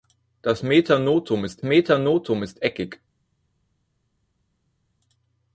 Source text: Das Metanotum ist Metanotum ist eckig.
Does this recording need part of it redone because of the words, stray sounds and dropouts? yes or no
no